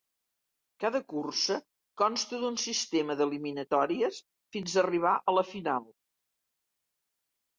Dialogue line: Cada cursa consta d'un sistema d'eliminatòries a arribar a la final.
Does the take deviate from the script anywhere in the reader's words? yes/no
yes